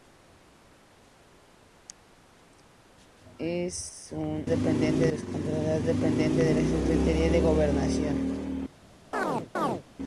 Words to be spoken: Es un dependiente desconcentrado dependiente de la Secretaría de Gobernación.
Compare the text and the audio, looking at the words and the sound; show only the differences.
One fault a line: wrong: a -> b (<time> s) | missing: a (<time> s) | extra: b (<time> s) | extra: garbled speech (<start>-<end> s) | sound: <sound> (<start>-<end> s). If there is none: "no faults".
sound: chirp (9.1-9.8 s)